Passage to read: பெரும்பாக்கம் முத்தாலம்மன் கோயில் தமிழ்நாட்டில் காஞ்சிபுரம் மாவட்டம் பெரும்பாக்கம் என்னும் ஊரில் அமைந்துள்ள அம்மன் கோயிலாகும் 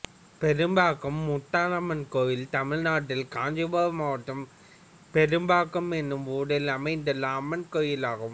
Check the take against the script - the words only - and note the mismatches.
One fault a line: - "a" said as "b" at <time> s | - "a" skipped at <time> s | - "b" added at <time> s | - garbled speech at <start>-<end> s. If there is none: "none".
none